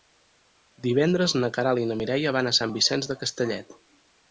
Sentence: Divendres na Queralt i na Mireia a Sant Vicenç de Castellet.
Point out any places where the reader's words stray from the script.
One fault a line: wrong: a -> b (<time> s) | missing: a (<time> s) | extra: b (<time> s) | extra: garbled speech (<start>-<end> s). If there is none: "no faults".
extra: van (2.4 s)